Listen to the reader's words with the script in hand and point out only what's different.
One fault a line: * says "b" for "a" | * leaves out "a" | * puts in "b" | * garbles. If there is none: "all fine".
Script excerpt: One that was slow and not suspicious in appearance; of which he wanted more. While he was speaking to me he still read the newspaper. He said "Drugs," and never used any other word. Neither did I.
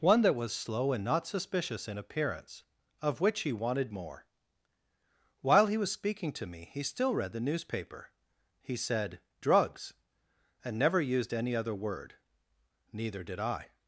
all fine